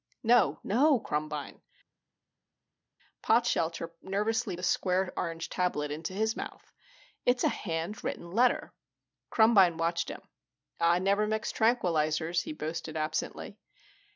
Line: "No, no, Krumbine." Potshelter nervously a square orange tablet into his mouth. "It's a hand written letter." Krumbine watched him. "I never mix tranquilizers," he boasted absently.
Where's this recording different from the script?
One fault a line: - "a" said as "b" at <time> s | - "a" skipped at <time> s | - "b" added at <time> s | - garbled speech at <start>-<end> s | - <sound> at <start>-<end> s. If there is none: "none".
none